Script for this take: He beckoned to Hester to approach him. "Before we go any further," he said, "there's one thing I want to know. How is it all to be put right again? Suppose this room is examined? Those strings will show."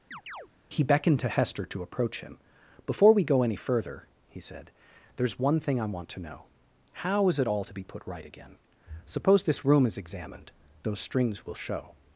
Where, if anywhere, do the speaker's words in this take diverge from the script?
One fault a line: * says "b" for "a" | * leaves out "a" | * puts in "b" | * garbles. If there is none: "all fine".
all fine